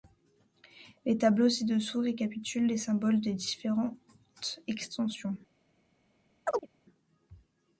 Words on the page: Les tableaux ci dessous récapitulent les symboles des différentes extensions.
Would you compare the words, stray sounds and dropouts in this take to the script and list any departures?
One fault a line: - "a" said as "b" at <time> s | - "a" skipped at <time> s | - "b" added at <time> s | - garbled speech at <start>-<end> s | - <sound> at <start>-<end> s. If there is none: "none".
- chirp at 6.5-6.7 s